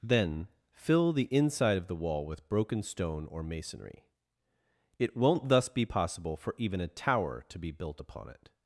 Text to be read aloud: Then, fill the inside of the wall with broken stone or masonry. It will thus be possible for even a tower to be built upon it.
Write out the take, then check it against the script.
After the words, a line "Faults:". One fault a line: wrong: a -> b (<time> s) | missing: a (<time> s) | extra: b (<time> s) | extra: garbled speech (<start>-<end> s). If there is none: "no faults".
Then, fill the inside of the wall with broken stone or masonry. It won't thus be possible for even a tower to be built upon it.
Faults:
wrong: will -> won't (5.2 s)